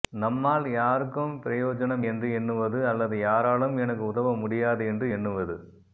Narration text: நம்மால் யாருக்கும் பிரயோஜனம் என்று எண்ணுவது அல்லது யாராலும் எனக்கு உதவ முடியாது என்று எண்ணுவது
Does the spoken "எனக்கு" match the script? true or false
true